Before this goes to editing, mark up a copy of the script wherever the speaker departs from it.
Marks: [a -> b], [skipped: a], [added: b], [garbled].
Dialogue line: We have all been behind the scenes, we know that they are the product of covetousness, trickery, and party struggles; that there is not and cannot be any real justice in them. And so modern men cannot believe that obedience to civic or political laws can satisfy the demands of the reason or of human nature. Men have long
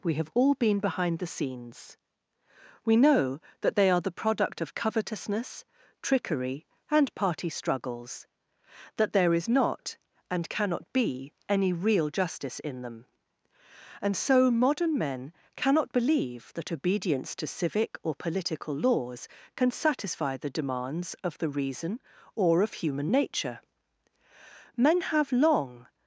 We have all been behind the scenes, we know that they are the product of covetousness, trickery, and party struggles; that there is not and cannot be any real justice in them. And so modern men cannot believe that obedience to civic or political laws can satisfy the demands of the reason or of human nature. Men have long